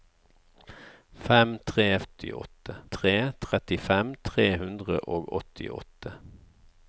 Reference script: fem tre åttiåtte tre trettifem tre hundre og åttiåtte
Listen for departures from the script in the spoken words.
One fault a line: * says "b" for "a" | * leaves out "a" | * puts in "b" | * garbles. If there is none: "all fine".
all fine